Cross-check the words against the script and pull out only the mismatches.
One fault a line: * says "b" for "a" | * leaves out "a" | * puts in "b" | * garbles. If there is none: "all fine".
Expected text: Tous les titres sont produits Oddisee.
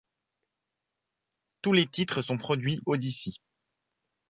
all fine